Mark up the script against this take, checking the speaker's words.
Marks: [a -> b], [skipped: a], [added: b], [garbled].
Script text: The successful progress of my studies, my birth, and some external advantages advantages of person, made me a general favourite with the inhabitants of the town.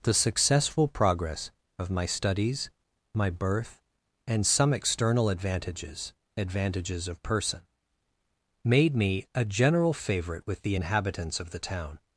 The successful progress of my studies, my birth, and some external advantages advantages of person, made me a general favourite with the inhabitants of the town.